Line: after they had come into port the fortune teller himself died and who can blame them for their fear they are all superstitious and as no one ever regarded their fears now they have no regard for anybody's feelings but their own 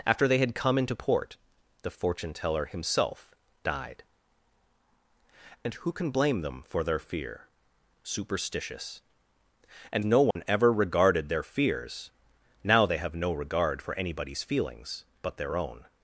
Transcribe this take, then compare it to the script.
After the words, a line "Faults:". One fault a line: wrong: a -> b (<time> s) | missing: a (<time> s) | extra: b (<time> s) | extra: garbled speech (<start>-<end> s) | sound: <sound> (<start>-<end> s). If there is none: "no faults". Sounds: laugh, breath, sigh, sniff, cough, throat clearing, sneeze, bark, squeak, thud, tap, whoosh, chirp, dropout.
after they had come into port the fortune teller himself died and who can blame them for their fear superstitious and no one ever regarded their fears now they have no regard for anybody's feelings but their own
Faults:
missing: they are all (7.4 s)
missing: as (10.1 s)
sound: dropout (10.3-10.4 s)